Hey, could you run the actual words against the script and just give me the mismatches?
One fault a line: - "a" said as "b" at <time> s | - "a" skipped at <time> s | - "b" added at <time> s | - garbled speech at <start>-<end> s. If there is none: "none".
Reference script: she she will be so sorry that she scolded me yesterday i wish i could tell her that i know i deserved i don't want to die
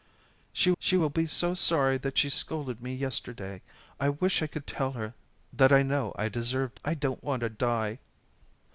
none